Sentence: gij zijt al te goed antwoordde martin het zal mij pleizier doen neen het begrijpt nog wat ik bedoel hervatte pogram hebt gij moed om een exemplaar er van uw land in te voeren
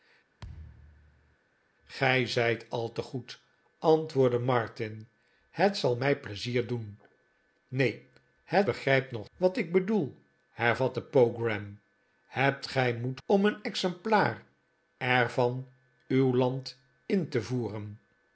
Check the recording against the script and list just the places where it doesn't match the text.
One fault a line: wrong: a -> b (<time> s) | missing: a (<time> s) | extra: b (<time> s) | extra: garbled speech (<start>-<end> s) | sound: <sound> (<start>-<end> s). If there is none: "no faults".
sound: thud (0.4-1.4 s)